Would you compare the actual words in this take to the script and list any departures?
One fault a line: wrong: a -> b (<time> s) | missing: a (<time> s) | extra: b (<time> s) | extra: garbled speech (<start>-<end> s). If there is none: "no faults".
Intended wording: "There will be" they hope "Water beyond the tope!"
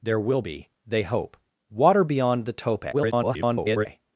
extra: garbled speech (2.9-3.9 s)